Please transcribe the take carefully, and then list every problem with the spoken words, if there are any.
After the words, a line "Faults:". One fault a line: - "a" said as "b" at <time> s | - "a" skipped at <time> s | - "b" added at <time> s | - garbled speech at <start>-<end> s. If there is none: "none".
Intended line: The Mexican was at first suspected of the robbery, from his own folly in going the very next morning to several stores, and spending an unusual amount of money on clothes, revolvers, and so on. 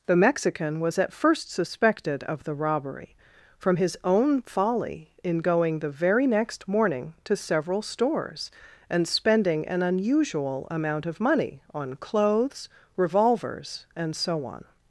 The Mexican was at first suspected of the robbery, from his own folly in going the very next morning to several stores, and spending an unusual amount of money on clothes, revolvers, and so on.
Faults:
none